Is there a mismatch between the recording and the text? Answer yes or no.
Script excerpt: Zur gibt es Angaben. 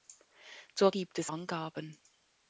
no